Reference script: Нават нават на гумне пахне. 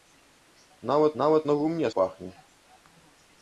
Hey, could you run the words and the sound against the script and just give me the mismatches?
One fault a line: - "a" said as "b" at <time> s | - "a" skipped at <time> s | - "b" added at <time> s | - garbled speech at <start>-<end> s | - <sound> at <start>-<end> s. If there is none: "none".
none